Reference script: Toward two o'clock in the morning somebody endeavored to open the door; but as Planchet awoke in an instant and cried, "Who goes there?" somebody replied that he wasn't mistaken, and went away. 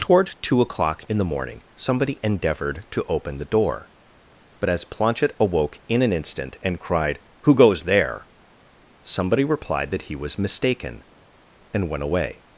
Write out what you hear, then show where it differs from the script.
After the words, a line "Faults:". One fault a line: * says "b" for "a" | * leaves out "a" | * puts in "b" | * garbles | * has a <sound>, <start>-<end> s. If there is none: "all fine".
Toward two o'clock in the morning somebody endeavored to open the door; but as Planchet awoke in an instant and cried, "Who goes there?" somebody replied that he was mistaken, and went away.
Faults:
* says "was" for "wasn't"